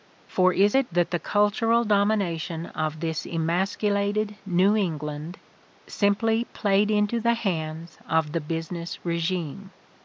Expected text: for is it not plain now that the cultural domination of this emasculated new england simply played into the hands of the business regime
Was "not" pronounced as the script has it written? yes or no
no